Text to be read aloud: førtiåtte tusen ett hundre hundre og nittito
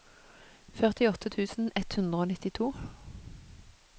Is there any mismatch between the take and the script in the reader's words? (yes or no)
yes